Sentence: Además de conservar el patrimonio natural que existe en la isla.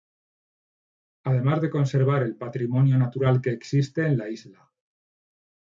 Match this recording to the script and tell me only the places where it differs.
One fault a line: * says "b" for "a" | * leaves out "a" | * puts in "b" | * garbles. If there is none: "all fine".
all fine